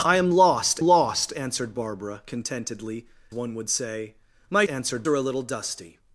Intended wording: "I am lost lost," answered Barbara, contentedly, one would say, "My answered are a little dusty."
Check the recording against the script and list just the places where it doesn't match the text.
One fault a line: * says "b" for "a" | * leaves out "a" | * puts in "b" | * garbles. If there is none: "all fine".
all fine